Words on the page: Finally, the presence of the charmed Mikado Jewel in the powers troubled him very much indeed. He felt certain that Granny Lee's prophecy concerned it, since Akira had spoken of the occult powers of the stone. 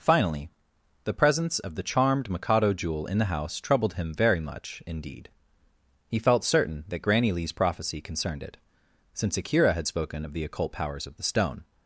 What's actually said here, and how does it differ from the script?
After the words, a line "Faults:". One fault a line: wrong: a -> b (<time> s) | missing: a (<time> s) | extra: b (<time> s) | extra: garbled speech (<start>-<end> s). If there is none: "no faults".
Finally, the presence of the charmed Mikado Jewel in the house troubled him very much indeed. He felt certain that Granny Lee's prophecy concerned it, since Akira had spoken of the occult powers of the stone.
Faults:
wrong: powers -> house (3.2 s)